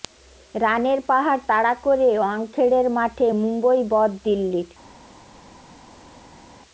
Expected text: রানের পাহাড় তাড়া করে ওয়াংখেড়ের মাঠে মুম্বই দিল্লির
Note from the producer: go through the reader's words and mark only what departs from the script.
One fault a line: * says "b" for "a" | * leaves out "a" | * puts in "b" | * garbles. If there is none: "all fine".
* puts in "বধ"